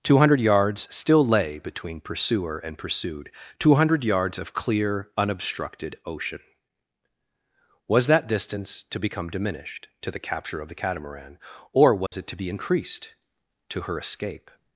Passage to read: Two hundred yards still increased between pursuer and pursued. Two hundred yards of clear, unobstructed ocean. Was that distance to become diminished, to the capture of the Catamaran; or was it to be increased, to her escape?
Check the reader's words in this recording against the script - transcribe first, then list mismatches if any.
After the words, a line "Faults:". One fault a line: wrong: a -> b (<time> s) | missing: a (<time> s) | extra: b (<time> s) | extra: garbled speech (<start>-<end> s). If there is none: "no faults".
Two hundred yards still lay between pursuer and pursued. Two hundred yards of clear, unobstructed ocean. Was that distance to become diminished, to the capture of the Catamaran; or was it to be increased, to her escape?
Faults:
wrong: increased -> lay (1.2 s)